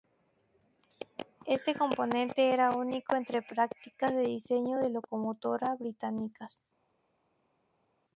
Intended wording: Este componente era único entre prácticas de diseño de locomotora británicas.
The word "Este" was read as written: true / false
true